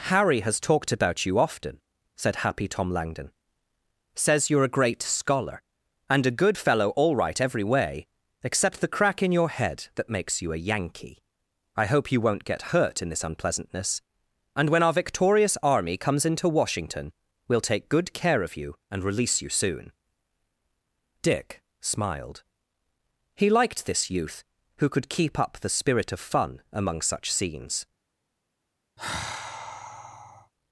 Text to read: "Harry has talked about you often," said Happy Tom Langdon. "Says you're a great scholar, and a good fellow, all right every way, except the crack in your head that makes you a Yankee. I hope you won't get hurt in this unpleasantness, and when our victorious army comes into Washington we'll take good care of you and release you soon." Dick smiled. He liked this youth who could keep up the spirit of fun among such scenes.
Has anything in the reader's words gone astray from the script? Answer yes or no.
no